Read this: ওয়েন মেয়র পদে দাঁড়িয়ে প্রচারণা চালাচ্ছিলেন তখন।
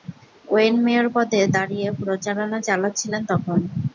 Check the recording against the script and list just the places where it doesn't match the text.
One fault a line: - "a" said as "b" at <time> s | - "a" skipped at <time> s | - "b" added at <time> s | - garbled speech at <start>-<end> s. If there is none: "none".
none